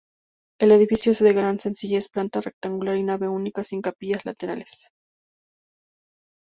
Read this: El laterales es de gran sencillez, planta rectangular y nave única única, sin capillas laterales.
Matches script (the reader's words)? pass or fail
fail